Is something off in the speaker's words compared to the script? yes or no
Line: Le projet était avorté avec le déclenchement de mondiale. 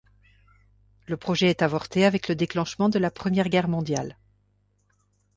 yes